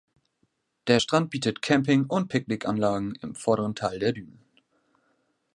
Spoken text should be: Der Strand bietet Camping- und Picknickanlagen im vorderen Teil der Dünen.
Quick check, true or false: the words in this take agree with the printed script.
true